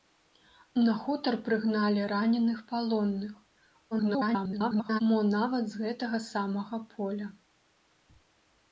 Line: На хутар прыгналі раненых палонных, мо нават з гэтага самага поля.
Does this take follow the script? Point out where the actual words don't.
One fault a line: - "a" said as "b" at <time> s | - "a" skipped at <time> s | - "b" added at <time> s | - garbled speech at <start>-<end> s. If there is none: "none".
- garbled speech at 3.9-5.0 s